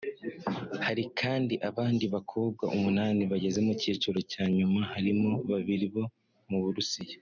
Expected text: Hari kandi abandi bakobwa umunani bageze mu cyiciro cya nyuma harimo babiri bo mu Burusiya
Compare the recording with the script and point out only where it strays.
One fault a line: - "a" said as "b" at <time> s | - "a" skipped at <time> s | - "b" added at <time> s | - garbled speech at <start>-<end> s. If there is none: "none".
none